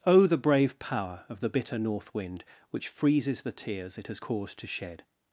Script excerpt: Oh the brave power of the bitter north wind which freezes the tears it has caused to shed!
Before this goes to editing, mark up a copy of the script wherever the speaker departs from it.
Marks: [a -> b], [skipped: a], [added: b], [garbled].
Oh the brave power of the bitter north wind which freezes the tears it has caused to shed!